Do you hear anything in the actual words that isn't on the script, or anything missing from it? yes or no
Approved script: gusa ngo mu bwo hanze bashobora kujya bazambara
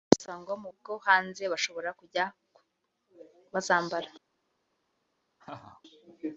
no